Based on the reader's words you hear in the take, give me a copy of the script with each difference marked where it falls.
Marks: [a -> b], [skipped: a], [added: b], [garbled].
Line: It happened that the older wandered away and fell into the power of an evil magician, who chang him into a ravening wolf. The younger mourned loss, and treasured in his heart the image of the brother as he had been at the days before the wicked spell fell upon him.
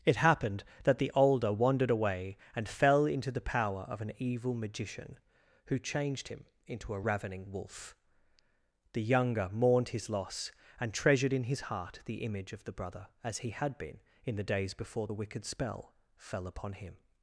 It happened that the older wandered away and fell into the power of an evil magician, who [chang -> changed] him into a ravening wolf. The younger mourned [added: his] loss, and treasured in his heart the image of the brother as he had been [at -> in] the days before the wicked spell fell upon him.